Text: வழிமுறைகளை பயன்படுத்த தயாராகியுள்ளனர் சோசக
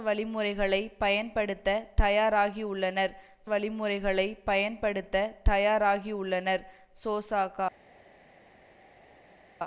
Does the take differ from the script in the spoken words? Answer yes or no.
yes